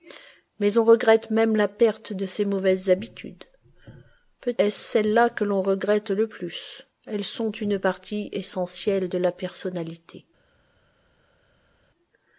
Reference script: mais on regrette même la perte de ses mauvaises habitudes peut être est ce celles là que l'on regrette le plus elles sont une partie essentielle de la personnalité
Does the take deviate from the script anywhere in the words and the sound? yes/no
yes